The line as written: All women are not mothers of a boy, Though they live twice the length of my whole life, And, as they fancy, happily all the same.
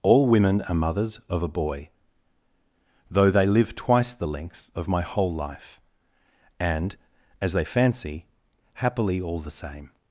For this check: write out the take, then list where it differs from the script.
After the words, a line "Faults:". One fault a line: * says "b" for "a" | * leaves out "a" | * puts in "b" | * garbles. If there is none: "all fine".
All women are mothers of a boy, Though they live twice the length of my whole life, And, as they fancy, happily all the same.
Faults:
* leaves out "not"